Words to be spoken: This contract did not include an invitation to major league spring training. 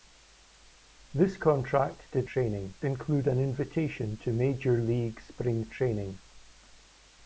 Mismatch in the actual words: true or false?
true